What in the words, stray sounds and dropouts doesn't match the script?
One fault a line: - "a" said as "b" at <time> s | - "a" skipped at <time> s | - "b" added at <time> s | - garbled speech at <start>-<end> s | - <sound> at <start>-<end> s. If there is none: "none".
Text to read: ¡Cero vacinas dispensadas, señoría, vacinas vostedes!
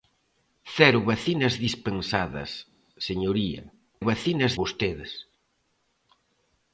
none